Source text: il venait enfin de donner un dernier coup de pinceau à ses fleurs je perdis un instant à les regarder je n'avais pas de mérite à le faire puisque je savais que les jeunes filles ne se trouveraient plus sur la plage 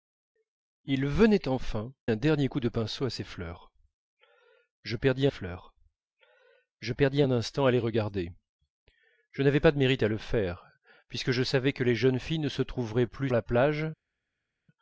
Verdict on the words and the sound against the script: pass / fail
fail